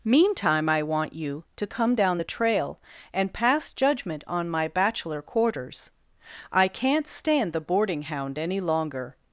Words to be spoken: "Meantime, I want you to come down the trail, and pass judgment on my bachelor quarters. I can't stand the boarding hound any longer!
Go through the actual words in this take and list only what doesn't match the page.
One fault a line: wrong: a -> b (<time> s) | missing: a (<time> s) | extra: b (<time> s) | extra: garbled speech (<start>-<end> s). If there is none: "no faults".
no faults